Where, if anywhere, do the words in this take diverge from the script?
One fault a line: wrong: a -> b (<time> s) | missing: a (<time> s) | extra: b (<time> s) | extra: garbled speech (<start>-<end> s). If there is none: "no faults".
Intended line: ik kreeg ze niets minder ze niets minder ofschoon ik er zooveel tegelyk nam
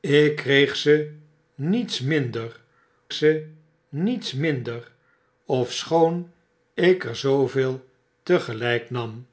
no faults